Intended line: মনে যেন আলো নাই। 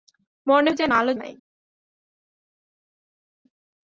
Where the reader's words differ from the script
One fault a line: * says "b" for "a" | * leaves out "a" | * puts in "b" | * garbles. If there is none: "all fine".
all fine